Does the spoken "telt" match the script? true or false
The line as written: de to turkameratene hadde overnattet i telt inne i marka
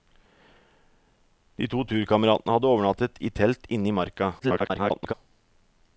true